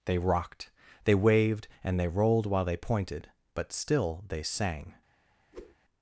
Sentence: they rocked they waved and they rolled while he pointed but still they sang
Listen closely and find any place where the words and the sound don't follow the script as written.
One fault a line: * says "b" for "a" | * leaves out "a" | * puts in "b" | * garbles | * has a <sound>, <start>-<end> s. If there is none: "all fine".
* says "they" for "he"
* has a whoosh, 5.5-5.8 s